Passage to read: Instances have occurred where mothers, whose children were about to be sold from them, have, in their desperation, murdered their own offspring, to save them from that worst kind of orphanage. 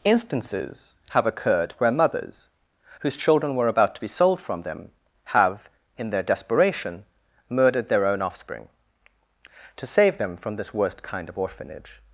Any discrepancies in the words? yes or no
yes